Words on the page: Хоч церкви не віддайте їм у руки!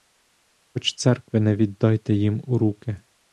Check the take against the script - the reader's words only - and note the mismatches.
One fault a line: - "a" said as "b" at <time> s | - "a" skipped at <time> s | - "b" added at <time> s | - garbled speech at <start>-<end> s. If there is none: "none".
none